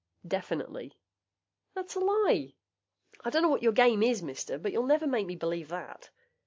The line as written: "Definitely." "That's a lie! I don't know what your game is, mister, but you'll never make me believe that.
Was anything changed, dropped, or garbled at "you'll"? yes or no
no